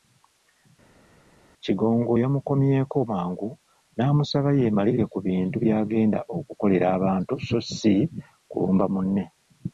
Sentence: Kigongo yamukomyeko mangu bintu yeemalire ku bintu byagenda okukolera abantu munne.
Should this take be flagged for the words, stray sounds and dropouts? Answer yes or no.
yes